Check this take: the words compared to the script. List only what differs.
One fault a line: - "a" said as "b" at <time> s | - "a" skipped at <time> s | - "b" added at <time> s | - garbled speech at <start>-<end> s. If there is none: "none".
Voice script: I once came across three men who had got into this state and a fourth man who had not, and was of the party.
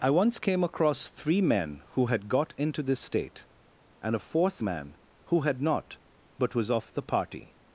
- "and" said as "but" at 6.4 s